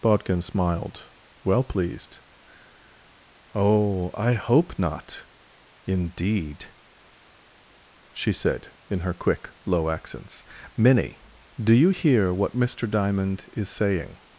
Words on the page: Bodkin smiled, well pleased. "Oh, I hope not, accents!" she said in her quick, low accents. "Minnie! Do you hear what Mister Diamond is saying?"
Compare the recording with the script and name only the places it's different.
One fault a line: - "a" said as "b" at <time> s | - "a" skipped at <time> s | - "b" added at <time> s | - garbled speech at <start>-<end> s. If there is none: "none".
- "accents" said as "indeed" at 5.8 s